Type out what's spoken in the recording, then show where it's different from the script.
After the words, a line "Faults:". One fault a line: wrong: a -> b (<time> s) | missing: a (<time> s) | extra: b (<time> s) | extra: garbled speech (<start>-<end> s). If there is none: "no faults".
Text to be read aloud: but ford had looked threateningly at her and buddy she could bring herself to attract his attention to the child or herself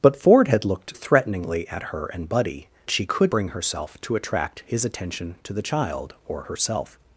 but ford had looked threateningly at her and buddy she could bring herself to attract his attention to the child or herself
Faults:
no faults